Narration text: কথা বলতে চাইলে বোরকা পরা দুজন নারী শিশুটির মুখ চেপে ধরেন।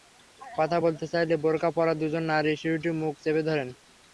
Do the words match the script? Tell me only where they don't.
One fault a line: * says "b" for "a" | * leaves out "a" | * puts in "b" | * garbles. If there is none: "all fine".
all fine